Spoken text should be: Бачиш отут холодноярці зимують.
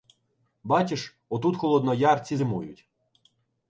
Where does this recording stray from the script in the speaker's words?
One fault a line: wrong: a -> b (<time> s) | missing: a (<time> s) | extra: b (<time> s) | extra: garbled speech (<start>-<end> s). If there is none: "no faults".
no faults